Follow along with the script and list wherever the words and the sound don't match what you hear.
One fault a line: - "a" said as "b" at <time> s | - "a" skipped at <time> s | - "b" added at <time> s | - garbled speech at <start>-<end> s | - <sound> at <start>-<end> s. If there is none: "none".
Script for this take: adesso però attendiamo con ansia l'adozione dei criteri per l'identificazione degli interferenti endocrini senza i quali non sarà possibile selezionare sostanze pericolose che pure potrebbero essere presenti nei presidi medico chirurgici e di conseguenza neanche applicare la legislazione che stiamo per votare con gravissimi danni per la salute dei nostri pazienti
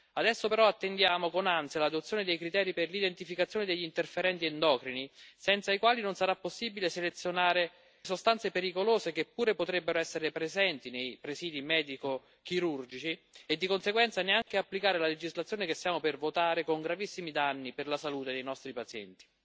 - dropout at 14.4-14.5 s